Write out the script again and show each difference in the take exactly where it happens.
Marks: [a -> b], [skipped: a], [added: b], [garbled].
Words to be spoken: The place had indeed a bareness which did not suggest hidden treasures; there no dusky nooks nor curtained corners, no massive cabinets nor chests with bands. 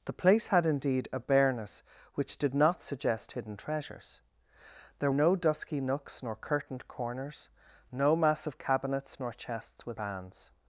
The place had indeed a bareness which did not suggest hidden treasures; there no dusky nooks nor curtained corners, no massive cabinets nor chests with bands.